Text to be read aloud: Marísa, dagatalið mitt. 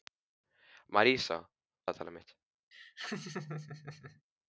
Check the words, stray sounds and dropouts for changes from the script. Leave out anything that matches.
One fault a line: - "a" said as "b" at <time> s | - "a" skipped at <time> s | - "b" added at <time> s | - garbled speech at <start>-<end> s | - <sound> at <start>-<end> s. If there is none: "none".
- laugh at 2.7-4.2 s